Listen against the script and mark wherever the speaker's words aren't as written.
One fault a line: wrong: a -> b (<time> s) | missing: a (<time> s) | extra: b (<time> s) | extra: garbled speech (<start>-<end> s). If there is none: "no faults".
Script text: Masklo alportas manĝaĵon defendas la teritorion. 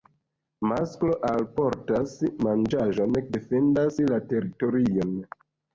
no faults